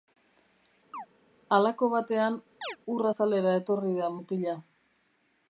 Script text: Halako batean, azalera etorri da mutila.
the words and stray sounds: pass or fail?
fail